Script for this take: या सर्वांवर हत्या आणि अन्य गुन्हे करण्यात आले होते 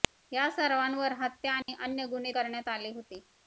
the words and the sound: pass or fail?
fail